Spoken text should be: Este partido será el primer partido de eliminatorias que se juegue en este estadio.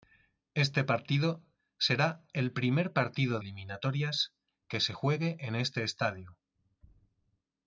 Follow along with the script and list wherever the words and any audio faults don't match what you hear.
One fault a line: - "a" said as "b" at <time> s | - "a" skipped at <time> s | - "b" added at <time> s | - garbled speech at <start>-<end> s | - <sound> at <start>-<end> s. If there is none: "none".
- "de" skipped at 3.4 s